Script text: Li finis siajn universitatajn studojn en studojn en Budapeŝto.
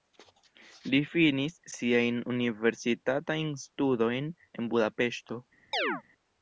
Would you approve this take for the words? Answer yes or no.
no